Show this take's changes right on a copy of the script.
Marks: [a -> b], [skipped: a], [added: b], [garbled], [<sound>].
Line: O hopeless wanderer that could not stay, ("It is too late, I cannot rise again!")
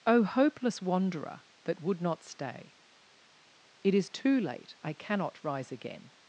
O hopeless wanderer that [could -> would] not stay, ("It is too late, I cannot rise again!")